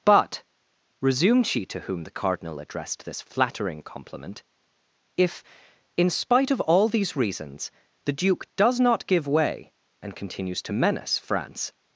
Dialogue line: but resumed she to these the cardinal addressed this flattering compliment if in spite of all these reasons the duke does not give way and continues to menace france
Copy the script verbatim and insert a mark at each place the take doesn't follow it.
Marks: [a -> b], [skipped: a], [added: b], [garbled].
but resumed she to [these -> whom] the cardinal addressed this flattering compliment if in spite of all these reasons the duke does not give way and continues to menace france